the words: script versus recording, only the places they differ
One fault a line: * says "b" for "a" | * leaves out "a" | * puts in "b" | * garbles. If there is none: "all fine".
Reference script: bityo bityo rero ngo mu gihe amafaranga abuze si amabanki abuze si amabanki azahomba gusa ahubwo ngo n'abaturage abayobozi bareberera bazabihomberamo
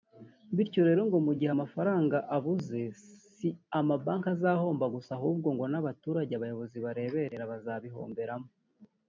* leaves out "bityo"
* leaves out "abuze si amabanki"